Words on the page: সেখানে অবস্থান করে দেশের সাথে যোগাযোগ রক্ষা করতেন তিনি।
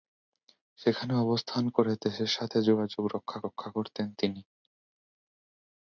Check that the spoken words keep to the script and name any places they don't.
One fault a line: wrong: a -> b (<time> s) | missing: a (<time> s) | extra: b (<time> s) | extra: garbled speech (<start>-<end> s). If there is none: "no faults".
extra: রক্ষা (3.4 s)